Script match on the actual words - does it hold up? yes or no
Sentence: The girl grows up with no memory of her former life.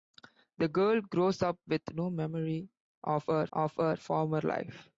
no